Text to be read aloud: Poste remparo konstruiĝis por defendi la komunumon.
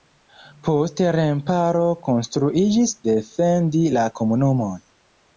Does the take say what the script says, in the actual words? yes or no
no